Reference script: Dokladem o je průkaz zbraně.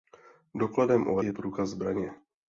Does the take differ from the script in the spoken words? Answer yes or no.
no